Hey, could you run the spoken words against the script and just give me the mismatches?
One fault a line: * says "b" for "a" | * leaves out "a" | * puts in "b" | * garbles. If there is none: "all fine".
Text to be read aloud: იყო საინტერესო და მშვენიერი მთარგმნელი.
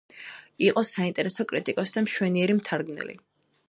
* puts in "კრიტიკოსი"